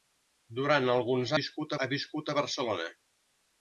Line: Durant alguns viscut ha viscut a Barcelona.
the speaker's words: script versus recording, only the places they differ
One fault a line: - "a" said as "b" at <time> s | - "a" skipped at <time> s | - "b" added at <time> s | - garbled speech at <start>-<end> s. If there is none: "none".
none